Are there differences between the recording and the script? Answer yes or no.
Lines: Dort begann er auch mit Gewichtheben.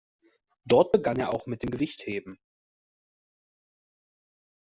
yes